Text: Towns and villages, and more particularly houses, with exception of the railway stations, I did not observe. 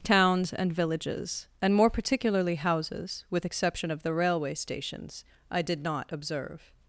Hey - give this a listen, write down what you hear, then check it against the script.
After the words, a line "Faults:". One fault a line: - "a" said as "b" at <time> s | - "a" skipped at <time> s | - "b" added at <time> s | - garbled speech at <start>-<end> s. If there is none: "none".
Towns and villages, and more particularly houses, with exception of the railway stations, I did not observe.
Faults:
none